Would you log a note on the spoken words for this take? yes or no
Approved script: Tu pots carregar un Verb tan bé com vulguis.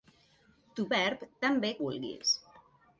yes